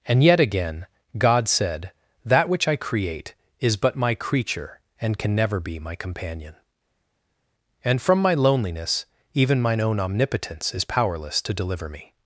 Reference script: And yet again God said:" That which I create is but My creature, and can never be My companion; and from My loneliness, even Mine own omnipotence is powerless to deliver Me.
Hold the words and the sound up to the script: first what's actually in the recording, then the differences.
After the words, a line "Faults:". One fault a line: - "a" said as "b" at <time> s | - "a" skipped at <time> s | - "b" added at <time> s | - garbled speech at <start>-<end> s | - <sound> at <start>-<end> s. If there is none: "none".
And yet again God said:" That which I create is but My creature, and can never be My companion; and from My loneliness, even Mine own omnipotence is powerless to deliver Me.
Faults:
none